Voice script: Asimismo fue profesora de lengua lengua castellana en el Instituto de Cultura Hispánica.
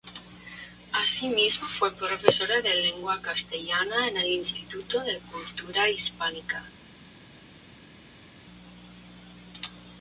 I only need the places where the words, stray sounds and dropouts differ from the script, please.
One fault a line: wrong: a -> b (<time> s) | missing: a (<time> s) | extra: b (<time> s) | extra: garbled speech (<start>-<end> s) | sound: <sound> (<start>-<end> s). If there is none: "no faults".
missing: lengua (3.2 s)